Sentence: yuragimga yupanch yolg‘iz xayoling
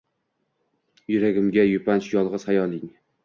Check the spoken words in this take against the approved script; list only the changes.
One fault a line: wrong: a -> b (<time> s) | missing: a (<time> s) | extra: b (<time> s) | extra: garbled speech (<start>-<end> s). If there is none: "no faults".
no faults